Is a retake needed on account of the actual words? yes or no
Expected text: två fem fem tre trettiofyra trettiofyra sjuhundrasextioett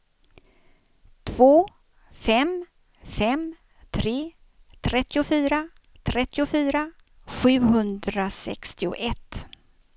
no